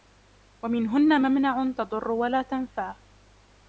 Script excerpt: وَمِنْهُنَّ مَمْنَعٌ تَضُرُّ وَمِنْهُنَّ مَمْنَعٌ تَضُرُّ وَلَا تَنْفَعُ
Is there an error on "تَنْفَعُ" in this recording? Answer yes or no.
no